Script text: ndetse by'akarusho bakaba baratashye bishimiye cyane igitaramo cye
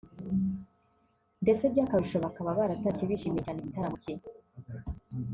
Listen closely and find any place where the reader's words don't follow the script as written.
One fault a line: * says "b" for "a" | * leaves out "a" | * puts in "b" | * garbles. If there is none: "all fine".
all fine